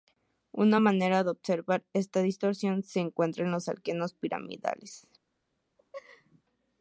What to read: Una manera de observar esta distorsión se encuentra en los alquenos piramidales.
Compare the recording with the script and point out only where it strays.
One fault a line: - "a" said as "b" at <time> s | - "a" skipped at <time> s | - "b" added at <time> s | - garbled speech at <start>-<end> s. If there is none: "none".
none